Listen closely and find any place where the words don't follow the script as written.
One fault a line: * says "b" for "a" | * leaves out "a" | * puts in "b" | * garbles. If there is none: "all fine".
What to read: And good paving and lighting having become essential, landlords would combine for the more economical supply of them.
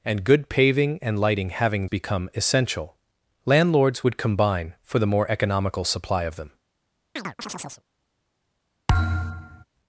all fine